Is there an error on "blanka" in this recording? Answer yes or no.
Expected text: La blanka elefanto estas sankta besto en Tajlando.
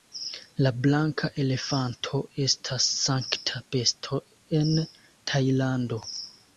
no